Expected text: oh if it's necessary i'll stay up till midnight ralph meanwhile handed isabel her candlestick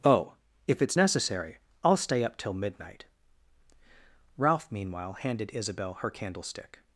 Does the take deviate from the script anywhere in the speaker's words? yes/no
no